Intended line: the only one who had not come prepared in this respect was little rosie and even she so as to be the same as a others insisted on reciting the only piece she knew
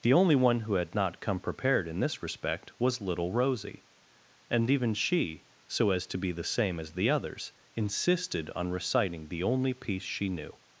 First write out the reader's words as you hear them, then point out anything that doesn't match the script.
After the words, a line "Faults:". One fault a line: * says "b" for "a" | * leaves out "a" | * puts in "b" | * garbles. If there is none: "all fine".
the only one who had not come prepared in this respect was little rosie and even she so as to be the same as the others insisted on reciting the only piece she knew
Faults:
* says "the" for "a"